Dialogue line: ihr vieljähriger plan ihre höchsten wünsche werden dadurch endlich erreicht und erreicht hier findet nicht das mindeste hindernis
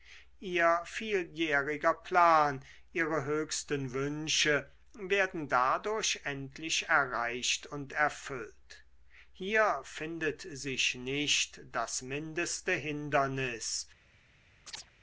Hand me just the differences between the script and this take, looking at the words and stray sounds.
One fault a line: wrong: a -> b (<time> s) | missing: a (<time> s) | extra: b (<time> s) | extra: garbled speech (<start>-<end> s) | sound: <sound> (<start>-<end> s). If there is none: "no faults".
wrong: erreicht -> erfüllt (7.9 s)
extra: sich (10.4 s)
sound: chirp (14.7-14.9 s)